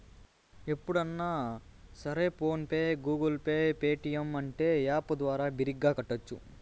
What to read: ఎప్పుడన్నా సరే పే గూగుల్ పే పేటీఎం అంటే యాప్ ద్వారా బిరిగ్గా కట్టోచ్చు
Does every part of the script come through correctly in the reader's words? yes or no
no